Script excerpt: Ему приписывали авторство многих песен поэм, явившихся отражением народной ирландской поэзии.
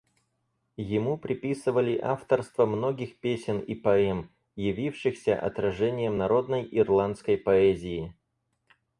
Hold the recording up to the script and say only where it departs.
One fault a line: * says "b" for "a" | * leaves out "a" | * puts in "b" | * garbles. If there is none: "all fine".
* puts in "и"